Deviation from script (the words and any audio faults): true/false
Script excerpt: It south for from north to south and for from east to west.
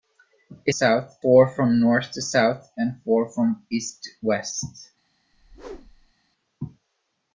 true